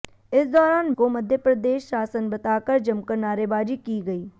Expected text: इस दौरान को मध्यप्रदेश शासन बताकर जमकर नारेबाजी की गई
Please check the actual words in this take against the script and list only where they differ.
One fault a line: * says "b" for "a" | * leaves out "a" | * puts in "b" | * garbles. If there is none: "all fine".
all fine